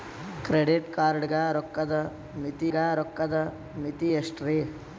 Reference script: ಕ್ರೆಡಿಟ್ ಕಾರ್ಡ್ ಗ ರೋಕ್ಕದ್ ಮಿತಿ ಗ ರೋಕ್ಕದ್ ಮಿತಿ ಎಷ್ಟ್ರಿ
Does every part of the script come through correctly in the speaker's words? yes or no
yes